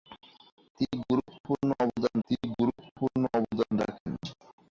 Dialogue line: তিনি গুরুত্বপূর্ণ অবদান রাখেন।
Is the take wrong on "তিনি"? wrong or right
right